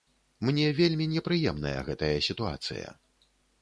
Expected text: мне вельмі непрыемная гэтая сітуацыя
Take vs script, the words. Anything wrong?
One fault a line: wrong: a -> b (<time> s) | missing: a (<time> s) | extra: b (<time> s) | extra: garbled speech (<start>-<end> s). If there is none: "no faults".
no faults